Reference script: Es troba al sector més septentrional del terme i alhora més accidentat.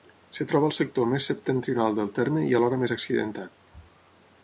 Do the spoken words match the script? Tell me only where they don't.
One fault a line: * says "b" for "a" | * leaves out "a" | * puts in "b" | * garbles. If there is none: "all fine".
all fine